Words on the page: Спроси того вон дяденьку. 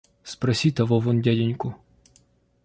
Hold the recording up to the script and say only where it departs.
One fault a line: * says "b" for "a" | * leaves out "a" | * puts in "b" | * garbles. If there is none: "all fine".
all fine